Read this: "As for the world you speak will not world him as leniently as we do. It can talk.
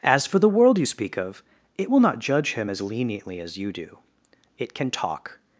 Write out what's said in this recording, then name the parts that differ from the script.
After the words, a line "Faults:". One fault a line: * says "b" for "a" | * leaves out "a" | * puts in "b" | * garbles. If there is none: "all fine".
"As for the world you speak of it will not judge him as leniently as you do. It can talk.
Faults:
* puts in "of it"
* says "judge" for "world"
* says "you" for "we"